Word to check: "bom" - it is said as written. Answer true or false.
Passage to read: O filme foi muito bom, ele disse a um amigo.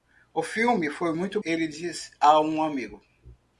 false